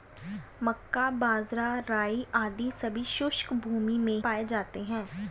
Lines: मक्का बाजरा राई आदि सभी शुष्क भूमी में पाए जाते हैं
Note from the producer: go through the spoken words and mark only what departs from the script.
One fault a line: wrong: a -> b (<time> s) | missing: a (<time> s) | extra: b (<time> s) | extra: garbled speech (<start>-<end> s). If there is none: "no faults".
no faults